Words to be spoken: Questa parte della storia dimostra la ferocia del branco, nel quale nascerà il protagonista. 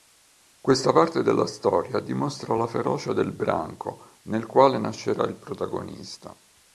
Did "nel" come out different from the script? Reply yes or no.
no